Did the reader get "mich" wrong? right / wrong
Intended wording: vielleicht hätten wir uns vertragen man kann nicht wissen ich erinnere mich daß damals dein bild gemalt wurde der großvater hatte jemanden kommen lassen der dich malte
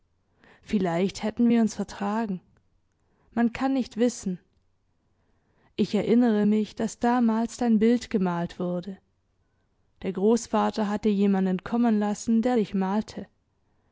right